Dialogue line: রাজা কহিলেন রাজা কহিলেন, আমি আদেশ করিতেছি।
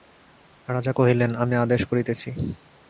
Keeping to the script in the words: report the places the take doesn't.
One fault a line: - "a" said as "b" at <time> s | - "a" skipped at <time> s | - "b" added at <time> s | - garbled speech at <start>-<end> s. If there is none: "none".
- "রাজা কহিলেন" skipped at 1.3 s